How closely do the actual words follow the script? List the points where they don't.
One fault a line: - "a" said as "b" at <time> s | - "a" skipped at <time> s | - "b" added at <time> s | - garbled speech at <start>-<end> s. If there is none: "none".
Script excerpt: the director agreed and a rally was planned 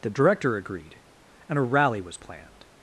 none